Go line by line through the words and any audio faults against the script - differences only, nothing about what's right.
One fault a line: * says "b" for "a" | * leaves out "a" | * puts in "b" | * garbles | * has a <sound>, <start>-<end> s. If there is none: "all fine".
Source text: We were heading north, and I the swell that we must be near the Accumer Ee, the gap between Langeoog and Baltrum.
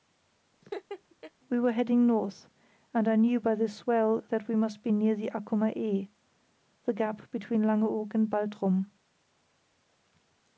* has a laugh, 0.6-1.3 s
* puts in "knew by"